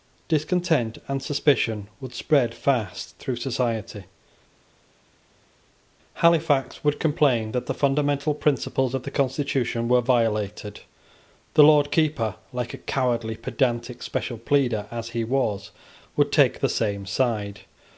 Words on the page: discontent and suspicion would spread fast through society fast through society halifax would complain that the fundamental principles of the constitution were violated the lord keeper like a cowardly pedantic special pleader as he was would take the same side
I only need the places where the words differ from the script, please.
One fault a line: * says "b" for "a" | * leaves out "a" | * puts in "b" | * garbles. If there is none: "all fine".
* leaves out "fast through society"